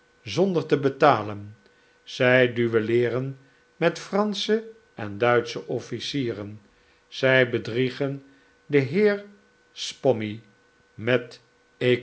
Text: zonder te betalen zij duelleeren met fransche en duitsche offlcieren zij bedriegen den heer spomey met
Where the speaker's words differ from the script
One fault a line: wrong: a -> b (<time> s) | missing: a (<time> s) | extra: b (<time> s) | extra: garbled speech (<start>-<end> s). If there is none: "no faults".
no faults